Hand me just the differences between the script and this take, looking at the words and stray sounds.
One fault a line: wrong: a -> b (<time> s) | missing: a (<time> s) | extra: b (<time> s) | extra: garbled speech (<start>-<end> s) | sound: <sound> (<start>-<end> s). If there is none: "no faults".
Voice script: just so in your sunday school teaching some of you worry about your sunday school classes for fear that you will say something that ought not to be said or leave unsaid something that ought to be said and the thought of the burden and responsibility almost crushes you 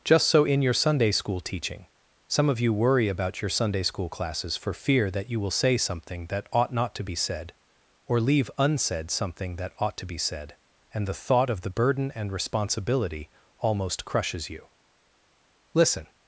extra: listen (15.7 s)